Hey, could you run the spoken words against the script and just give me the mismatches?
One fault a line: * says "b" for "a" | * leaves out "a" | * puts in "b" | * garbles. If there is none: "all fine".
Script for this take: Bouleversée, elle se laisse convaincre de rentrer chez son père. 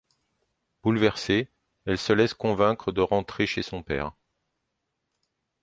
all fine